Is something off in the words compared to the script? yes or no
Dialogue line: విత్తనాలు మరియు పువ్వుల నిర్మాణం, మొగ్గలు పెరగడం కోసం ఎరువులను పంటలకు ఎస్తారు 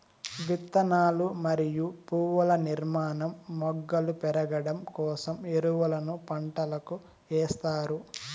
no